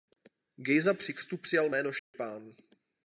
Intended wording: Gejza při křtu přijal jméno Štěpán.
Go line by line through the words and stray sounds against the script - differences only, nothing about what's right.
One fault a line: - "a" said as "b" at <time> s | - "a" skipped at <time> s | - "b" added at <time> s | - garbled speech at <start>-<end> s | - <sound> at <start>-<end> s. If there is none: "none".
- dropout at 2.0-2.1 s